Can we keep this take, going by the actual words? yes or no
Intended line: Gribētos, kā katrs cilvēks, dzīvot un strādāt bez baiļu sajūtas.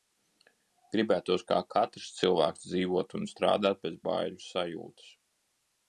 yes